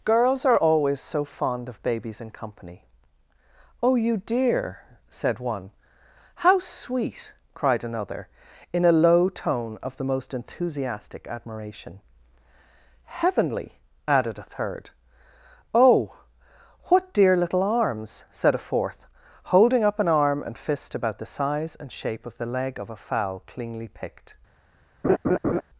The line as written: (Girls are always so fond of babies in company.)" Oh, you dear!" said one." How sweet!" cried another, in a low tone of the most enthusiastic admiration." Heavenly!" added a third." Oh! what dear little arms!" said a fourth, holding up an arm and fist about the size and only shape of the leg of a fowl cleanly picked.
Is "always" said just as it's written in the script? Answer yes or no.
yes